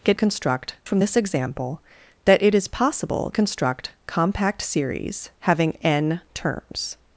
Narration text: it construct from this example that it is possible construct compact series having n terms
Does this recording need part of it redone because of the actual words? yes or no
no